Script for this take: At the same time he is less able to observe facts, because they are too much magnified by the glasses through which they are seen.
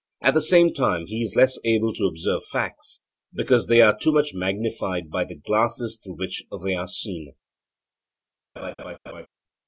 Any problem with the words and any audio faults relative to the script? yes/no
yes